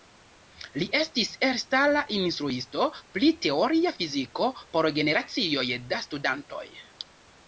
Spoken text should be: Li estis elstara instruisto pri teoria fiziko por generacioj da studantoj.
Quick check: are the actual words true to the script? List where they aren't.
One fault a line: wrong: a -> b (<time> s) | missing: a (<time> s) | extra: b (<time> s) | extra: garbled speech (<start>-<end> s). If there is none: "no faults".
no faults